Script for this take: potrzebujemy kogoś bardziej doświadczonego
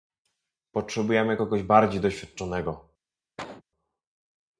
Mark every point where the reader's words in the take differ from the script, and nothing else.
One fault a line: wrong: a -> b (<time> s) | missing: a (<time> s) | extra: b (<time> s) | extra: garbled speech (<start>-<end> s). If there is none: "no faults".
no faults